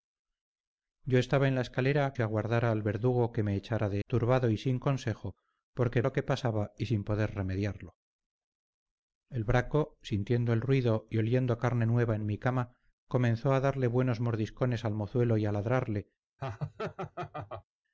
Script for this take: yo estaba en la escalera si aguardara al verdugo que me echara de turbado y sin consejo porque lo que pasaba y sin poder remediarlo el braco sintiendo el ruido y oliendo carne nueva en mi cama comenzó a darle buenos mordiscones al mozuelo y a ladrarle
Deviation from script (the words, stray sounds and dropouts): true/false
true